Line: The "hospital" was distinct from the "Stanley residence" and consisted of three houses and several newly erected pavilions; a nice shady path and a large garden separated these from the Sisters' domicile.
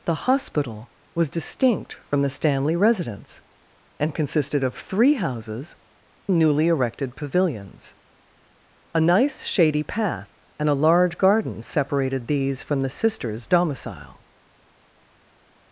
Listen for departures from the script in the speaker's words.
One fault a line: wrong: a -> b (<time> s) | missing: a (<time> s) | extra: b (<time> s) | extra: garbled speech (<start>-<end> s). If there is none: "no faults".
missing: and several (5.8 s)